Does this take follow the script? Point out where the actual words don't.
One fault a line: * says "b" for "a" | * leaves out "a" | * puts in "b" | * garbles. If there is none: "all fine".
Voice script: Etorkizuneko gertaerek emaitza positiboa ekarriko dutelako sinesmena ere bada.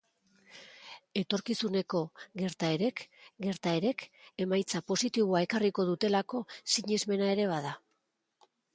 * puts in "gertaerek"